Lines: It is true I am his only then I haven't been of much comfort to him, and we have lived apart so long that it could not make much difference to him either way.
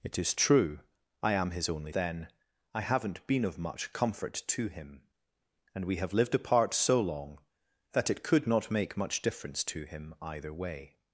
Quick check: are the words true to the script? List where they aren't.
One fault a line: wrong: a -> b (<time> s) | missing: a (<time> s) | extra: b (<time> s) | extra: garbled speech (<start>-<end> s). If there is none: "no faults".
no faults